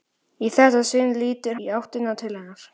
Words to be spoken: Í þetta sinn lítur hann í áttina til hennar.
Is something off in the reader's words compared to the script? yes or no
yes